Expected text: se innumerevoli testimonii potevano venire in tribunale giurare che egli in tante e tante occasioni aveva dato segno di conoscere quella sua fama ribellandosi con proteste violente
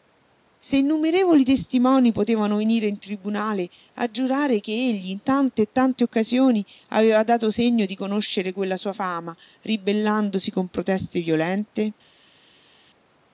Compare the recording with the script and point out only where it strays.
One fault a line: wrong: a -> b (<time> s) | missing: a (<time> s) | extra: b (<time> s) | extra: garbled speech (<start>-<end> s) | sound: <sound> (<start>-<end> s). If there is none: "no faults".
extra: a (4.0 s)